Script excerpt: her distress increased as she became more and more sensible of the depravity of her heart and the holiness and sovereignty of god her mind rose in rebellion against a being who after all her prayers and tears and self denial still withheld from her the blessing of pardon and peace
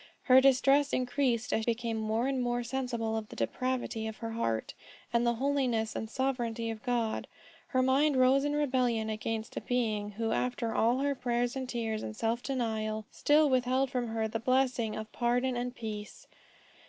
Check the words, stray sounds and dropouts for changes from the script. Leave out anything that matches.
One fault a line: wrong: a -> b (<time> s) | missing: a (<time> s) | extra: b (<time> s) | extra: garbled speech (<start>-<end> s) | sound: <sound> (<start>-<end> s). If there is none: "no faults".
missing: she (1.7 s)